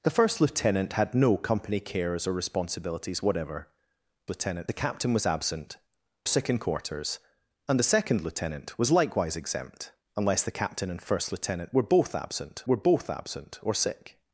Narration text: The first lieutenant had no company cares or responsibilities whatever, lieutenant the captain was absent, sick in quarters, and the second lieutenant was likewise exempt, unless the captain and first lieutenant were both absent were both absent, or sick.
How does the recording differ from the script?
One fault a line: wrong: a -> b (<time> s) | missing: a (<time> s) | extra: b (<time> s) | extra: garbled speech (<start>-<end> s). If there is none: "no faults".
no faults